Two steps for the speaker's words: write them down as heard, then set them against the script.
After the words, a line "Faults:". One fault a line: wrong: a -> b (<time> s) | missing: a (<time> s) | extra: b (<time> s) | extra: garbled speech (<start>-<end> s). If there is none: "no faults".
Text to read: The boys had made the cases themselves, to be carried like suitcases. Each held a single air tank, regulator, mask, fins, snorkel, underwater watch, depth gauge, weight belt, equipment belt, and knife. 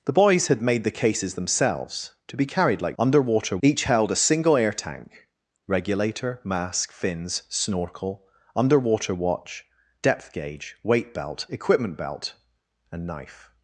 The boys had made the cases themselves, to be carried like underwater. Each held a single air tank, regulator, mask, fins, snorkel, underwater watch, depth gauge, weight belt, equipment belt, and knife.
Faults:
wrong: suitcases -> underwater (3.0 s)